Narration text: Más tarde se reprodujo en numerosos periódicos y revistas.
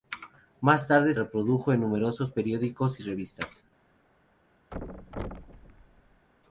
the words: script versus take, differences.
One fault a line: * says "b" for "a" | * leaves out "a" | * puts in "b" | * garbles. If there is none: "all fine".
* leaves out "se"